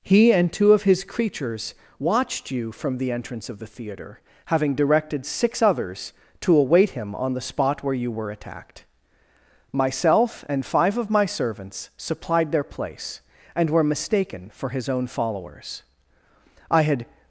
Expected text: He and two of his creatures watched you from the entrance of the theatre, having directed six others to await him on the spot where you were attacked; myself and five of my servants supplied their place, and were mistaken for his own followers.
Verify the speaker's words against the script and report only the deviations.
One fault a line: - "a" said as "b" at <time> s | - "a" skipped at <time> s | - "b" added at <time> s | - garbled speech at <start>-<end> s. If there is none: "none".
- "I had" added at 16.7 s